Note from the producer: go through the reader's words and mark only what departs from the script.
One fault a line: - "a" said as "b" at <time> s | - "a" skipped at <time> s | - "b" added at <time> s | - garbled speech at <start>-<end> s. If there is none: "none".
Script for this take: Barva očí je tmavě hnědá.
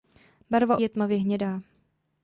- "očí" skipped at 0.8 s